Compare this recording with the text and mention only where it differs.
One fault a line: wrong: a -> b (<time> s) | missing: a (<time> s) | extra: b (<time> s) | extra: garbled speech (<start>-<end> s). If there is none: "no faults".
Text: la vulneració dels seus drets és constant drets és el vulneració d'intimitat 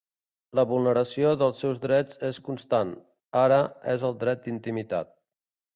wrong: drets -> ara (3.5 s)
wrong: vulneració -> dret (4.3 s)